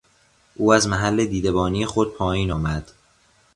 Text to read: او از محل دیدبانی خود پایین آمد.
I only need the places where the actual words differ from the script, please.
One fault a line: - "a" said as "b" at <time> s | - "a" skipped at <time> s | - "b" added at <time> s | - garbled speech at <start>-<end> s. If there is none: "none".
none